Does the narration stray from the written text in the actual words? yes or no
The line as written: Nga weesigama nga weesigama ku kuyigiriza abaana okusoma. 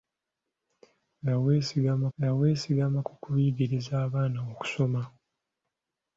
no